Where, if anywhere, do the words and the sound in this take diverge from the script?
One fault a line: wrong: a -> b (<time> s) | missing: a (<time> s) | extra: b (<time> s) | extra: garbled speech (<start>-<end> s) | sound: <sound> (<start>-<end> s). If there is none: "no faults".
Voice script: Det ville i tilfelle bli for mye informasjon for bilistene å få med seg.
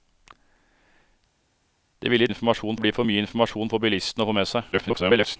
wrong: tilfelle -> informasjon (2.3 s)
extra: garbled speech (4.7-5.4 s)